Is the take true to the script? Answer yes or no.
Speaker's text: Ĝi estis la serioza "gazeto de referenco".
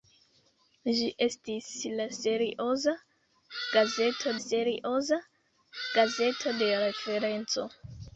no